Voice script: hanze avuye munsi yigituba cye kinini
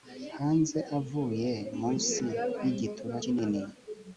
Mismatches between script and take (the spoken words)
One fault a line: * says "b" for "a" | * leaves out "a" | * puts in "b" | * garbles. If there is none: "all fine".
* leaves out "cye"